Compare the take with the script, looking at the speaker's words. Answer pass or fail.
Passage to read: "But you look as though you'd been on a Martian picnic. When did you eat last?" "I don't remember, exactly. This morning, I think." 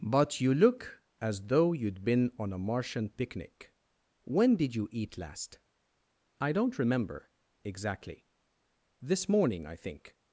pass